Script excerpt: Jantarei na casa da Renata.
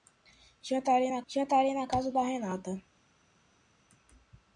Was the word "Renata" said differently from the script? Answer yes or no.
no